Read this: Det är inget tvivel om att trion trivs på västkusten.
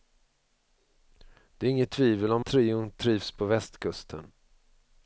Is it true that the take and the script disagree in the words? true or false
true